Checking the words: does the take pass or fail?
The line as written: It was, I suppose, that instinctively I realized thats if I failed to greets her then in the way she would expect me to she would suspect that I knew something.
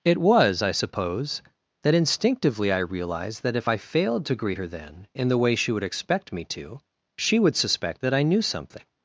fail